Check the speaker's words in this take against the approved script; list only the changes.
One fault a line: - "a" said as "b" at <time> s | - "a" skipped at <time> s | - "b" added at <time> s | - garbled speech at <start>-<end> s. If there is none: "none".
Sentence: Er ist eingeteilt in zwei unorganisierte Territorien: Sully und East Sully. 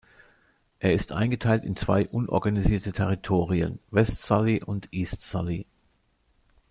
- "West" added at 3.9 s